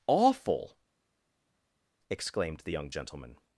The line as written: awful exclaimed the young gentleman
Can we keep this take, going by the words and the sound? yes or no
yes